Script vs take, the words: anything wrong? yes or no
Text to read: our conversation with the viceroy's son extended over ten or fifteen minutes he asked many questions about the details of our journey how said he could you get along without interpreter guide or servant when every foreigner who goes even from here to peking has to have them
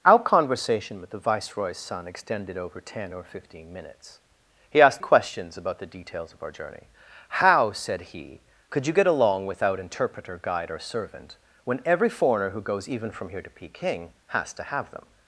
yes